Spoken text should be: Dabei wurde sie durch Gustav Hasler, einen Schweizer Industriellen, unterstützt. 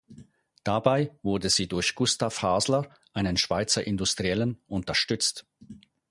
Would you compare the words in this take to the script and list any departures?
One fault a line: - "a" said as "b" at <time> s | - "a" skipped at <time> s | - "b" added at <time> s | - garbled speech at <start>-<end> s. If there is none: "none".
none